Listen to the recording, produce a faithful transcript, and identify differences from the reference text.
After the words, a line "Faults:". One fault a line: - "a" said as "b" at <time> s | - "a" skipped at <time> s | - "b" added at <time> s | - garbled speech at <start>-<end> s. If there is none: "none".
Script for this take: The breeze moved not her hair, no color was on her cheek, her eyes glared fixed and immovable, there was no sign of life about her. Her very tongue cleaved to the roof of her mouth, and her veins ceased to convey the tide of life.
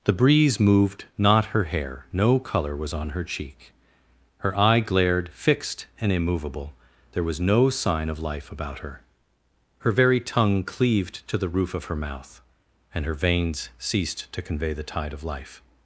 The breeze moved not her hair, no color was on her cheek, her eye glared fixed and immovable, there was no sign of life about her. Her very tongue cleaved to the roof of her mouth, and her veins ceased to convey the tide of life.
Faults:
- "eyes" said as "eye" at 4.6 s